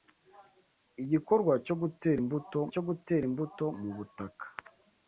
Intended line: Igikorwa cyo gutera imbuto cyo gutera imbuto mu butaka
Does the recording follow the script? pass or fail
pass